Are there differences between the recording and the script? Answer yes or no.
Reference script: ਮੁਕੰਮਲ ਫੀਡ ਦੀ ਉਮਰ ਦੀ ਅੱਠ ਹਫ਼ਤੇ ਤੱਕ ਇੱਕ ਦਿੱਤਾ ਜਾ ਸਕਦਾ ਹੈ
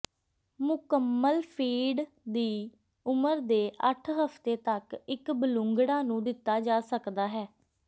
yes